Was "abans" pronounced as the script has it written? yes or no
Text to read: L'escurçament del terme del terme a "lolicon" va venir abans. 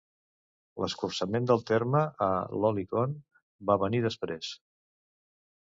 no